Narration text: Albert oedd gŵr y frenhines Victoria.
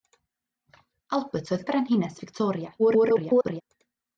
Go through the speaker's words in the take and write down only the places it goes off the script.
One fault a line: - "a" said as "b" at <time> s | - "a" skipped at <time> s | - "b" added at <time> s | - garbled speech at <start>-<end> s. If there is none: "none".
- "gŵr" skipped at 1.7 s
- garbled speech at 2.8-3.6 s